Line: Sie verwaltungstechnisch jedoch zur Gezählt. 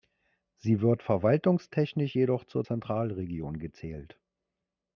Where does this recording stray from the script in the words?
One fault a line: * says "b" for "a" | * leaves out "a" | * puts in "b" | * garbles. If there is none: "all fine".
* puts in "wird"
* puts in "Zentralregion"